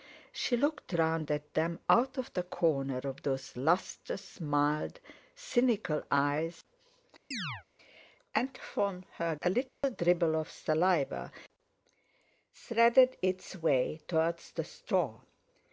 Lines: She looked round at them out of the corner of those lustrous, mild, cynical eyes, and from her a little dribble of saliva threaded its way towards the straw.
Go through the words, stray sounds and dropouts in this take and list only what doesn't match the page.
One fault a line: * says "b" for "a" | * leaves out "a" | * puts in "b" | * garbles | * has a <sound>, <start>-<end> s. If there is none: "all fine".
* has a chirp, 7.3-7.6 s
* has a dropout, 9.7-9.8 s